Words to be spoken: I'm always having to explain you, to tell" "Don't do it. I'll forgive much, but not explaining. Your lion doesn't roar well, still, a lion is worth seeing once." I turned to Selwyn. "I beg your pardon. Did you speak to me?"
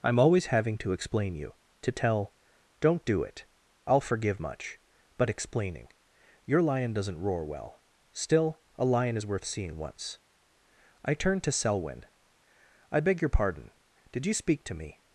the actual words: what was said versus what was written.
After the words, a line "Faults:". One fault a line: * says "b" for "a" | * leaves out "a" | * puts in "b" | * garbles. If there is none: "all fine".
I'm always having to explain you, to tell" "Don't do it. I'll forgive much, but explaining. Your lion doesn't roar well, still, a lion is worth seeing once." I turned to Selwyn. "I beg your pardon. Did you speak to me?"
Faults:
* leaves out "not"